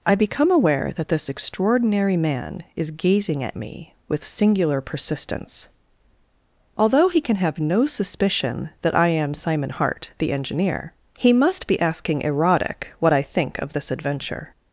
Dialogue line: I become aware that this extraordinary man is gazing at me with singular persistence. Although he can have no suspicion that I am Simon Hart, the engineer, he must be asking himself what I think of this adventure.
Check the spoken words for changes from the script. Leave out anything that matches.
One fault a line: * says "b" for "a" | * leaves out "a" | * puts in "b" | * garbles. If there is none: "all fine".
* says "erotic" for "himself"